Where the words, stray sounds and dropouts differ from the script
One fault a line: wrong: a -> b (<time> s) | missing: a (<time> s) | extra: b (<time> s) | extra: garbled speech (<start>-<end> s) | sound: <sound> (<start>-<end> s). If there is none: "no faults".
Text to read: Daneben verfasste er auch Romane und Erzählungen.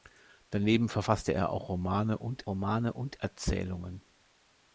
extra: Romane und (2.5 s)